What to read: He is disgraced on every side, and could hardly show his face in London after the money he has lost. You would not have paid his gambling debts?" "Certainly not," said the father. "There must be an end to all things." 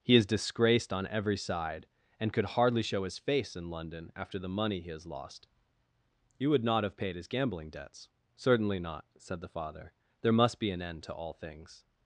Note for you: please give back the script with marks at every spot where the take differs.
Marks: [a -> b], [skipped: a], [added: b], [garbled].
He is disgraced on every side, and could hardly show his face in London after the money he has lost. You would not have paid his gambling debts?" "Certainly not," said the father. "There must be an end to all things."